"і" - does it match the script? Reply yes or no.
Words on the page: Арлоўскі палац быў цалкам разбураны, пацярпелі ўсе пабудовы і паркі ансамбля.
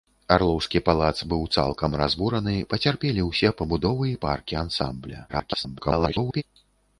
yes